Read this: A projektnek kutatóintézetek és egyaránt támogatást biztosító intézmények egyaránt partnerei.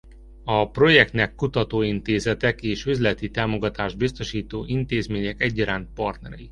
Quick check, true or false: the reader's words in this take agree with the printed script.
false